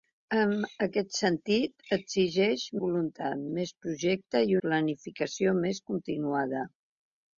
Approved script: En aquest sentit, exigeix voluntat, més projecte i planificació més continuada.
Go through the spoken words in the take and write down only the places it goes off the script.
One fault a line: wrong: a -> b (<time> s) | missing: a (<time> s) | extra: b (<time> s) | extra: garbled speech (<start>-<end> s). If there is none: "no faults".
no faults